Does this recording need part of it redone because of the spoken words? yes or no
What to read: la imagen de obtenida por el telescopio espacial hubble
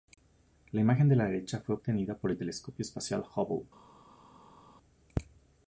yes